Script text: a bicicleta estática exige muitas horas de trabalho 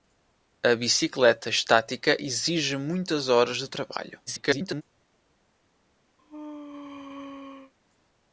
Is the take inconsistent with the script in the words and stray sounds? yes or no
yes